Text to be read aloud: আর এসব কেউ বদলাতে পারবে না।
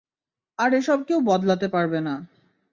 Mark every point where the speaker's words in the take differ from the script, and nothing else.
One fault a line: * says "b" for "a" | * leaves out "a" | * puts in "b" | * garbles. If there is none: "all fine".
all fine